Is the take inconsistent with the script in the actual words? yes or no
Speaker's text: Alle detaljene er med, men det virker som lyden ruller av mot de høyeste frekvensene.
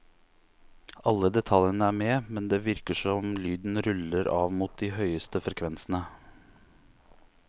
no